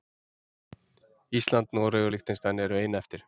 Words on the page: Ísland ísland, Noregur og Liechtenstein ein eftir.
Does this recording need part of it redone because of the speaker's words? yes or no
yes